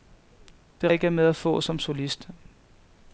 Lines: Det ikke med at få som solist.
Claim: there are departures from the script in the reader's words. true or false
false